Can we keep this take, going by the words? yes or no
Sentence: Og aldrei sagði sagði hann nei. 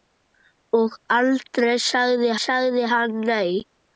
yes